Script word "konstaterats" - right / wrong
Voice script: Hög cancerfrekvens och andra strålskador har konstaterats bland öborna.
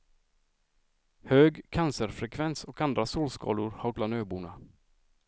wrong